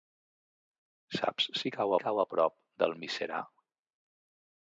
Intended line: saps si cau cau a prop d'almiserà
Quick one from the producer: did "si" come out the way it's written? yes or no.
yes